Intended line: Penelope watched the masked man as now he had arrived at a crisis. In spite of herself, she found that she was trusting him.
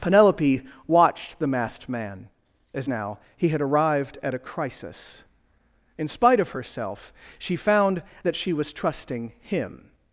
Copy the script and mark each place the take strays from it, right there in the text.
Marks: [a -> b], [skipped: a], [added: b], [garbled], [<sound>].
Penelope watched the masked man as now he had arrived at a crisis. In spite of herself, she found that she was trusting him.